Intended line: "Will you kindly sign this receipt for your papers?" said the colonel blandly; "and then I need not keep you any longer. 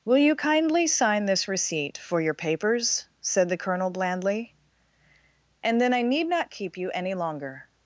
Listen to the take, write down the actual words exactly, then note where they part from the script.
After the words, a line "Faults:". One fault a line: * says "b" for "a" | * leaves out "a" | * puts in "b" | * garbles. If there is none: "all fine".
"Will you kindly sign this receipt for your papers?" said the colonel blandly; "and then I need not keep you any longer.
Faults:
all fine